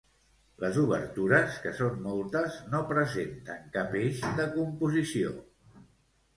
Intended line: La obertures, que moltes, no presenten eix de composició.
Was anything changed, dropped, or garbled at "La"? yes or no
yes